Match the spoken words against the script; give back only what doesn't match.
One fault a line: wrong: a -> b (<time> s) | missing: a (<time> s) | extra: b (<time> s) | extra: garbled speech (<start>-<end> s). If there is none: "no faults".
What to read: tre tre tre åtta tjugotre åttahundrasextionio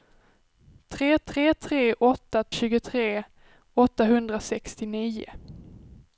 no faults